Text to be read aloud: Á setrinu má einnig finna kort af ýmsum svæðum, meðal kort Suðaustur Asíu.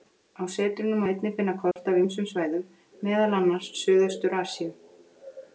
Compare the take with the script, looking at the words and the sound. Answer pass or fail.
fail